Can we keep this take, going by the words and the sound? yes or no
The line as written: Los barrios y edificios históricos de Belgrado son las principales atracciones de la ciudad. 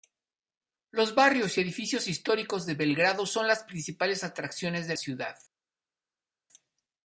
no